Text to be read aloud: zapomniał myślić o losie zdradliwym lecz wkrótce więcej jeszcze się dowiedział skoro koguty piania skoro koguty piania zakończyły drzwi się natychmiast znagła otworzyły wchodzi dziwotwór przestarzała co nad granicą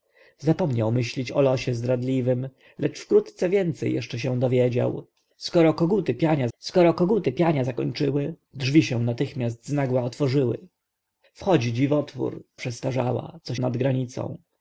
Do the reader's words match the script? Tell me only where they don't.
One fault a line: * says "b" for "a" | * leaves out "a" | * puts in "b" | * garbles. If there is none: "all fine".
all fine